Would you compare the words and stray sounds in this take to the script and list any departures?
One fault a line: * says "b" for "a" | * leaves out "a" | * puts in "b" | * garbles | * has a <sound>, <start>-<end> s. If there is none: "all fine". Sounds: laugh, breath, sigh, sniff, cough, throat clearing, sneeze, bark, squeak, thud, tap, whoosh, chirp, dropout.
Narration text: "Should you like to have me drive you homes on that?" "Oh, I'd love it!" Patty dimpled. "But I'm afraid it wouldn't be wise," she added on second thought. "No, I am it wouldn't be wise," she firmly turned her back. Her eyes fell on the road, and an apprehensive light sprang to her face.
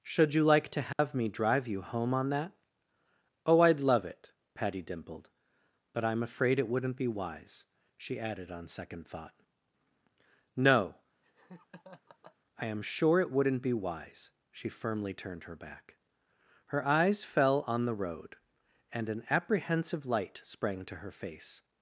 * has a dropout, 0.9-1.0 s
* says "home" for "homes"
* has a laugh, 11.2-12.4 s
* puts in "sure"